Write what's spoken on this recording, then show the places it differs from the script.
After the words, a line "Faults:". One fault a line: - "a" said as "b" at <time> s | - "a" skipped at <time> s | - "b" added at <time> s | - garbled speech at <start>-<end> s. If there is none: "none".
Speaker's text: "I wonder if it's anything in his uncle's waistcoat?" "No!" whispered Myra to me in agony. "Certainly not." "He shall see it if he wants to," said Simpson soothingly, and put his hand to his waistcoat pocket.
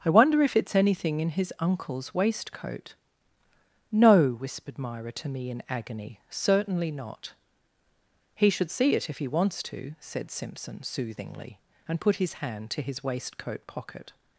"I wonder if it's anything in his uncle's waistcoat?" "No!" whispered Myra to me in agony. "Certainly not." "He should see it if he wants to," said Simpson soothingly, and put his hand to his waistcoat pocket.
Faults:
- "shall" said as "should" at 8.5 s